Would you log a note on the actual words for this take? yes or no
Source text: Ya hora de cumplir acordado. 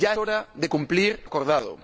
no